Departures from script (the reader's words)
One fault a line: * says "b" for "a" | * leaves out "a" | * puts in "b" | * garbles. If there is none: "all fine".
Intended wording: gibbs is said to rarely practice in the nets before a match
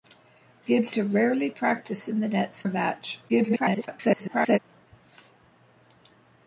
* leaves out "is said"
* leaves out "before"
* garbles